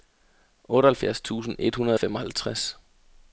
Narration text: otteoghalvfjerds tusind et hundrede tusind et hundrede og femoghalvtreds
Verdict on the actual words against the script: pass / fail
fail